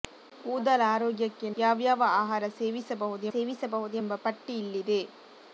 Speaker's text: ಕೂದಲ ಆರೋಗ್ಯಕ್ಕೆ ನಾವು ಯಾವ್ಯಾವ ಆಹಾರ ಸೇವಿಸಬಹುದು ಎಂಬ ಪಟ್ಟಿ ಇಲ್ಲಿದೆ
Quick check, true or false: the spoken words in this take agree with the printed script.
false